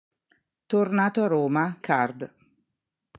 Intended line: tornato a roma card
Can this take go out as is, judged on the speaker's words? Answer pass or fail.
pass